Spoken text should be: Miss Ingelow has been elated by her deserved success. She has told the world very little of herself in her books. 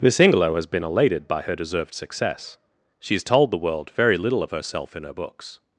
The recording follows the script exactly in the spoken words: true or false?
true